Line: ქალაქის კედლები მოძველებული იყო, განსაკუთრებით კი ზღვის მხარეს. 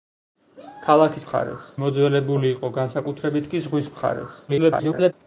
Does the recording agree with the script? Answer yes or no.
no